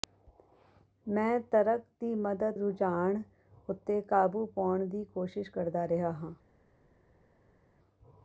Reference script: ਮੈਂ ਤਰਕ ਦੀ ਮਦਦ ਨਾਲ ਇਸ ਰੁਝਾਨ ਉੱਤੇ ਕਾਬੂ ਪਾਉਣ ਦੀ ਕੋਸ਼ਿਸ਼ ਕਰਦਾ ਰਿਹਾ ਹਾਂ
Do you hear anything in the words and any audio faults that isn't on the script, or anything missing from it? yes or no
yes